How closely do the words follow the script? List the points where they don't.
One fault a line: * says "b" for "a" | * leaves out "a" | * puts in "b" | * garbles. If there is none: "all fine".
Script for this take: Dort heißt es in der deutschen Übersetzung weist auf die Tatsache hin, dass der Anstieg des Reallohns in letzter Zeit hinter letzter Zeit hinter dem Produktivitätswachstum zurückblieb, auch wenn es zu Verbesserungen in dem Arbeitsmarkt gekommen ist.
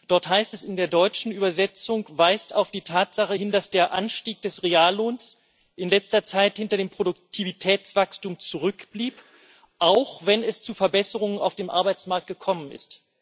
* leaves out "letzter Zeit hinter"
* says "auf" for "in"